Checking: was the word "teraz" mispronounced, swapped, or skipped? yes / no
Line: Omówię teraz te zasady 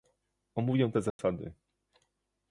yes